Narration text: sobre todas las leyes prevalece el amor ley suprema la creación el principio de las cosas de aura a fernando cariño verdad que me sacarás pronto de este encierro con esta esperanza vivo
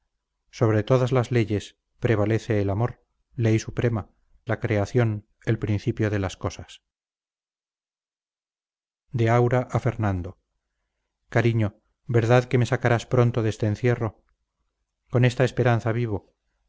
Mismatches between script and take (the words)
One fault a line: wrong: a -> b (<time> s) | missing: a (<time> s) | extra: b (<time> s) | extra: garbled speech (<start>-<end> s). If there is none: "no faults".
no faults